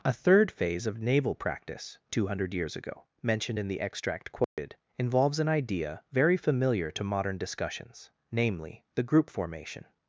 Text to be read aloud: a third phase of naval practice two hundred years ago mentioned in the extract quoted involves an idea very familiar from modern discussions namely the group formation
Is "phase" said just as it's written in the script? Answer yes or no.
yes